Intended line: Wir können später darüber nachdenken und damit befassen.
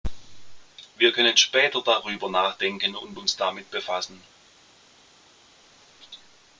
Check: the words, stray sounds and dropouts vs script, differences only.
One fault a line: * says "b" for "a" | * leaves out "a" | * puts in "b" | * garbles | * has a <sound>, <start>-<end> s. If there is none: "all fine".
* puts in "uns"